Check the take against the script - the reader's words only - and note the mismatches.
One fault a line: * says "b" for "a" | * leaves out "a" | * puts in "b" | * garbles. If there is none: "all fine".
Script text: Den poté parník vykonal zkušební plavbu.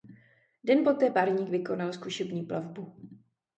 all fine